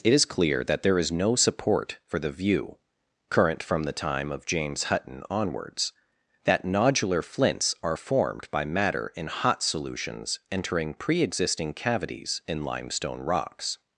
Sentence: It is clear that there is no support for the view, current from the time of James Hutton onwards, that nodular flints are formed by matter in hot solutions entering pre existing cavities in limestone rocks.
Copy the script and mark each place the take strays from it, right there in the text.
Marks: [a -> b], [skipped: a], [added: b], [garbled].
It is clear that there is no support for the view, current from the time of James Hutton onwards, that nodular flints are formed by matter in hot solutions entering pre existing cavities in limestone rocks.